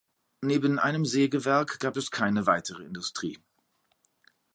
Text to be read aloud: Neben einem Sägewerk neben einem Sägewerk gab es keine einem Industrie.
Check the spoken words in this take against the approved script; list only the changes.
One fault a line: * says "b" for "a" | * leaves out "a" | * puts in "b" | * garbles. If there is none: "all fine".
* leaves out "neben einem Sägewerk"
* says "weitere" for "einem"